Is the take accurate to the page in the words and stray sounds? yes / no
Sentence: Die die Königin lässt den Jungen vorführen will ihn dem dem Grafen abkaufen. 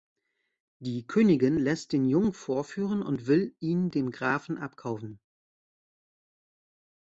no